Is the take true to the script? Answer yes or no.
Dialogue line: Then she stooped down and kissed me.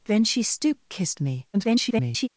no